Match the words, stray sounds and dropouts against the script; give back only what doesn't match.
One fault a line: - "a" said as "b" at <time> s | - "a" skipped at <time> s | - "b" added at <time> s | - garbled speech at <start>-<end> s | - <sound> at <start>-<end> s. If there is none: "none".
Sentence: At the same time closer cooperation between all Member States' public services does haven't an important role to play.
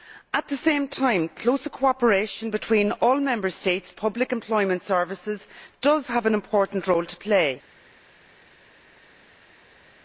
- "employment" added at 4.3 s
- "haven't" said as "have" at 6.1 s